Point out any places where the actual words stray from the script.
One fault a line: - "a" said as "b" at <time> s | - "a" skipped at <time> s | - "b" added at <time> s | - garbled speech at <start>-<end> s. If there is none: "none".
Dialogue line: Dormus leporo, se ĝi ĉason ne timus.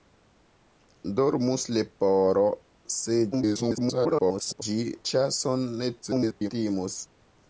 - garbled speech at 3.3-4.6 s
- garbled speech at 6.0-6.5 s